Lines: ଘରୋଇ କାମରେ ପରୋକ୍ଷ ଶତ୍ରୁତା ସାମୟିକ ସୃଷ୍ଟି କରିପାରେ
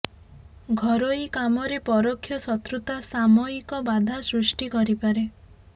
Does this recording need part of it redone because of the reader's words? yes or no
yes